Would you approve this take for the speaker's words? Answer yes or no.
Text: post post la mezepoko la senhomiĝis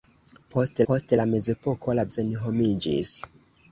yes